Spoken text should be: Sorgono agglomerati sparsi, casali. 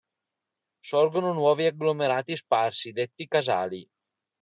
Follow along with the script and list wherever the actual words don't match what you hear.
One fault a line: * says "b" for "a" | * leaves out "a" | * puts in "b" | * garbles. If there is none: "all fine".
* puts in "nuovi"
* puts in "detti"